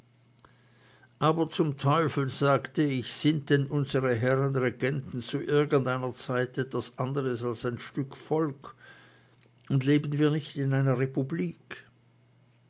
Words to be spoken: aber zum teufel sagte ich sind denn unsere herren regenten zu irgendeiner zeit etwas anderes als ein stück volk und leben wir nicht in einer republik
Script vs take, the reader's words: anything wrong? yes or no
no